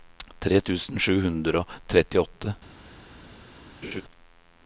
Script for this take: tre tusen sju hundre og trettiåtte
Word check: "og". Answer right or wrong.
right